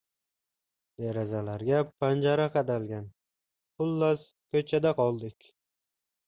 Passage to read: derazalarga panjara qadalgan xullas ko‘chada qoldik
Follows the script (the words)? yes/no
yes